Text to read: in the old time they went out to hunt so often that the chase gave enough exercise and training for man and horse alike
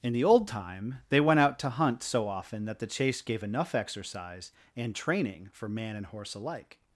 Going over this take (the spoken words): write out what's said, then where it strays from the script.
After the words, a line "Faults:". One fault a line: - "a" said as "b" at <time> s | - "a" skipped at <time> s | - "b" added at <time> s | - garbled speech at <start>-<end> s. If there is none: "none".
in the old time they went out to hunt so often that the chase gave enough exercise and training for man and horse alike
Faults:
none